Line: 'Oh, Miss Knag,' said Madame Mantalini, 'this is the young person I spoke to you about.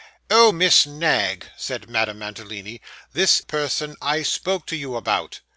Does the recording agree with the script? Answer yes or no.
no